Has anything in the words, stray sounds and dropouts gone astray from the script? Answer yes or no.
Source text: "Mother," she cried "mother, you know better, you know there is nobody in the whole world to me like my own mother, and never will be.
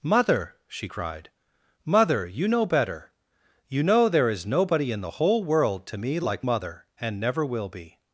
yes